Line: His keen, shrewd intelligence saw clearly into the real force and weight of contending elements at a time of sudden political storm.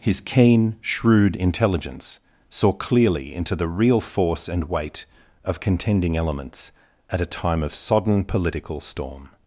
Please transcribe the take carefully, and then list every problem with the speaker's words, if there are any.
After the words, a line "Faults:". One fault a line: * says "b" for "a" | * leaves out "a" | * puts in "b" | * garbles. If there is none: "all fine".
His keen, shrewd intelligence saw clearly into the real force and weight of contending elements at a time of sodden political storm.
Faults:
* says "sodden" for "sudden"